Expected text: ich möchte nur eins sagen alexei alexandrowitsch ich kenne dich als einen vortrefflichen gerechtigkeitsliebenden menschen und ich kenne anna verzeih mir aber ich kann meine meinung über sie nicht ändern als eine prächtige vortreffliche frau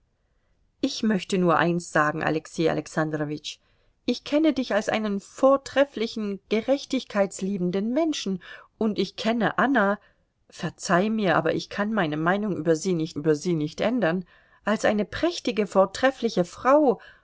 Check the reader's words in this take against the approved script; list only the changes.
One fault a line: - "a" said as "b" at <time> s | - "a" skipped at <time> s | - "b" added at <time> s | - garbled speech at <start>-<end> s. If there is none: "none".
- "über sie nicht" added at 13.1 s